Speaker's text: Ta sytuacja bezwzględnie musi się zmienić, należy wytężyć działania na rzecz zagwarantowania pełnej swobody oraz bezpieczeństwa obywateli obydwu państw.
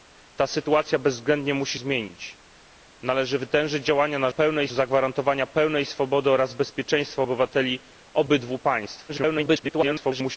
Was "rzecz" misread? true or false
true